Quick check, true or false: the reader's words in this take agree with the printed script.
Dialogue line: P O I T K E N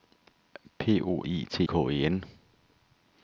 true